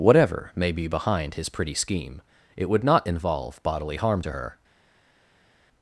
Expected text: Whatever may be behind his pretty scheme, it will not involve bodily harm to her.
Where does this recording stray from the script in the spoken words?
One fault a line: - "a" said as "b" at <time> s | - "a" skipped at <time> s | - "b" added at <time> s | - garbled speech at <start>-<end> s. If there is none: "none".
- "will" said as "would" at 2.7 s